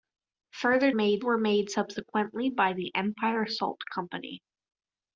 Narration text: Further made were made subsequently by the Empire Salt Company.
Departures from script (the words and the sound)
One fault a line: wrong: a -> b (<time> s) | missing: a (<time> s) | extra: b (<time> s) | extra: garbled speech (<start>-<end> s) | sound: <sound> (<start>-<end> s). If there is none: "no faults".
no faults